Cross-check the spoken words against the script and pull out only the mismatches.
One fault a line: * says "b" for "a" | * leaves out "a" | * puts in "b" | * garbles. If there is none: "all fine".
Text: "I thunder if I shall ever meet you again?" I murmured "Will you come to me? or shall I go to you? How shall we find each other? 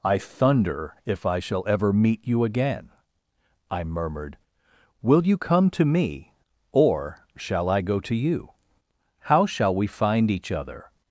all fine